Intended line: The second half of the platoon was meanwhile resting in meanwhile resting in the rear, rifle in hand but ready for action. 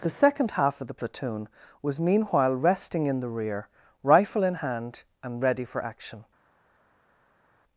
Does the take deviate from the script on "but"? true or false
true